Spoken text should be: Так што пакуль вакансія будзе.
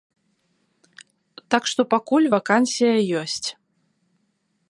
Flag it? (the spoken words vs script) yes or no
yes